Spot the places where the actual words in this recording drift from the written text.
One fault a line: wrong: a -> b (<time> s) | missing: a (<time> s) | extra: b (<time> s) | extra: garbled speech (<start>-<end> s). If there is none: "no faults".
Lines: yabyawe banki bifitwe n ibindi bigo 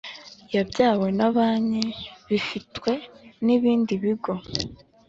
extra: na (1.2 s)